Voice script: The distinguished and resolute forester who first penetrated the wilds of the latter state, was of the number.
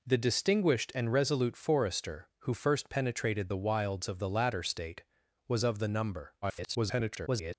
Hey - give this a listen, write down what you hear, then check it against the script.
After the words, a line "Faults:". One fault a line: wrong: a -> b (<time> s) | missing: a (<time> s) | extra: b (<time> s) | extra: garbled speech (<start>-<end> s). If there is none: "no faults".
The distinguished and resolute forester who first penetrated the wilds of the latter state, was of the number. [garbled]
Faults:
extra: garbled speech (6.4-7.5 s)